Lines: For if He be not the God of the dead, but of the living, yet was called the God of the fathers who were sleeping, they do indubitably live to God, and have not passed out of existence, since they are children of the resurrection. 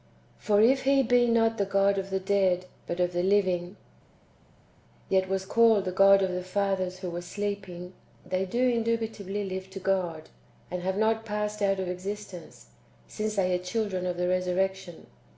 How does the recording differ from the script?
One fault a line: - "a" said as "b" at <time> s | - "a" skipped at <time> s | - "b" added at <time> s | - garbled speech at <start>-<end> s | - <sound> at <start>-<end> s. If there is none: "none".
none